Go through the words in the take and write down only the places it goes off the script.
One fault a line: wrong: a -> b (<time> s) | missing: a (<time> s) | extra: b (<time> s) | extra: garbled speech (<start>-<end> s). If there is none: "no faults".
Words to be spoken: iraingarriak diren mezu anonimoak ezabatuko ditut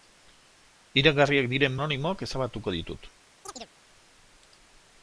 missing: mezu (1.8 s)